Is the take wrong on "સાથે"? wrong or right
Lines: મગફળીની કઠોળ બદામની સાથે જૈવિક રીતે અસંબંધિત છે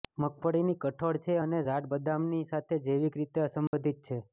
right